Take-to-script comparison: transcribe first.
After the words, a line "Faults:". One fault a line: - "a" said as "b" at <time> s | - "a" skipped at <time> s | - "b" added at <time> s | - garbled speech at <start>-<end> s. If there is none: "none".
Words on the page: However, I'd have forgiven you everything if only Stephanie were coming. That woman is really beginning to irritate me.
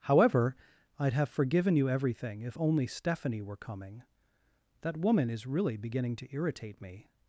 However, I'd have forgiven you everything if only Stephanie were coming. That woman is really beginning to irritate me.
Faults:
none